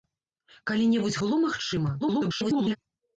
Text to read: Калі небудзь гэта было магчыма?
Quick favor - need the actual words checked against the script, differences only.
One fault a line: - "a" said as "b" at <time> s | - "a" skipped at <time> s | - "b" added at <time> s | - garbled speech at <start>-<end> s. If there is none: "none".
- "гэта" skipped at 1.2 s
- garbled speech at 2.0-2.8 s